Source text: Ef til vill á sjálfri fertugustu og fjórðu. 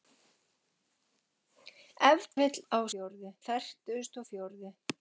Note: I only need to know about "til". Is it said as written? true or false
false